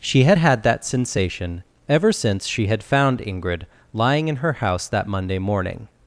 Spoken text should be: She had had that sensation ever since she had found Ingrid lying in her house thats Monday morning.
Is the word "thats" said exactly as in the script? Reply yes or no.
no